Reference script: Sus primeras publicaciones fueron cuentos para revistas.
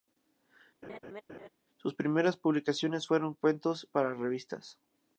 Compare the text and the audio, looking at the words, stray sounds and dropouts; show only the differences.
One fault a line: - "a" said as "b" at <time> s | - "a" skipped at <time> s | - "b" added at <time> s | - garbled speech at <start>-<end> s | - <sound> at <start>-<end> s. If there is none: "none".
- laugh at 0.8-1.5 s